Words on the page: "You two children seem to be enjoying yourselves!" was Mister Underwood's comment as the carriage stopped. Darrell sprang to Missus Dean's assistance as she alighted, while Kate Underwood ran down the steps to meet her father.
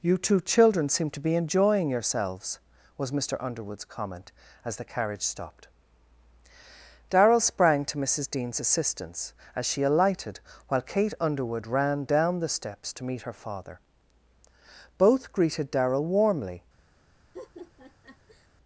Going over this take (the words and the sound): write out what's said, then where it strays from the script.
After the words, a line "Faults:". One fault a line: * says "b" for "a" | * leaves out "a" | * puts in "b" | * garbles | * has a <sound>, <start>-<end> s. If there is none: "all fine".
"You two children seem to be enjoying yourselves!" was Mister Underwood's comment as the carriage stopped. Darrell sprang to Missus Dean's assistance as she alighted, while Kate Underwood ran down the steps to meet her father. Both greeted Darrell warmly
Faults:
* puts in "Both greeted Darrell warmly"
* has a laugh, 17.3-18.5 s